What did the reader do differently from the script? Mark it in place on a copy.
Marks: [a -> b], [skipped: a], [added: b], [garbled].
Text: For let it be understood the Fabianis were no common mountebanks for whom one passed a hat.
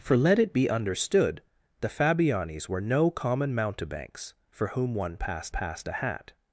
For let it be understood the Fabianis were no common mountebanks for whom one passed [added: passed] a hat.